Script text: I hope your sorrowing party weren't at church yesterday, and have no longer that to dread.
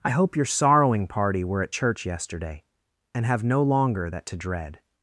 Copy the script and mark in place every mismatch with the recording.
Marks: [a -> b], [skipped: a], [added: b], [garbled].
I hope your sorrowing party [weren't -> were] at church yesterday, and have no longer that to dread.